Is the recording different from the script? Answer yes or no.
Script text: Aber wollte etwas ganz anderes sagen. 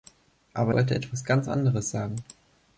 no